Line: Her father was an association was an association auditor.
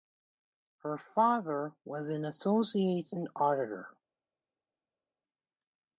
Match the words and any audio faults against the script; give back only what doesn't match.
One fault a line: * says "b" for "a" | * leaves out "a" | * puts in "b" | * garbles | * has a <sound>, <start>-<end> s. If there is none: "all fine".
* leaves out "was an association"